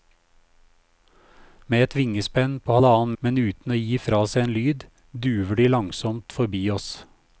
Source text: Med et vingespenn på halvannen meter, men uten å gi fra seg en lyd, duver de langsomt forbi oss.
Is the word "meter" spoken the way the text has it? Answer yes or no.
no